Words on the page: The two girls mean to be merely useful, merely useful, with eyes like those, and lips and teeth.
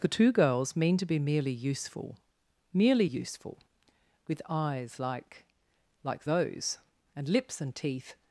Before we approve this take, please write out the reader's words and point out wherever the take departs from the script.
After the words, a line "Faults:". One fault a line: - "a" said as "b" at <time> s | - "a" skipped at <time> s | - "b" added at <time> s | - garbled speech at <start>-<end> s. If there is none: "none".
The two girls mean to be merely useful, merely useful, with eyes like like those, and lips and teeth.
Faults:
- "like" added at 6.0 s